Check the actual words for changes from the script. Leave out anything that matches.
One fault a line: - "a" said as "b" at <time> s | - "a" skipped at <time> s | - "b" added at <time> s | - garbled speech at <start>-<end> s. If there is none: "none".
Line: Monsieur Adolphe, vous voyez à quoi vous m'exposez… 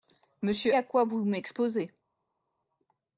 - "Adolphe vous voyez" skipped at 0.8 s